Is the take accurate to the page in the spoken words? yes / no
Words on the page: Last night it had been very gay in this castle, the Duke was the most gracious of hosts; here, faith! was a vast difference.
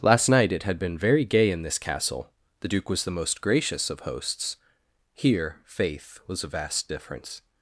yes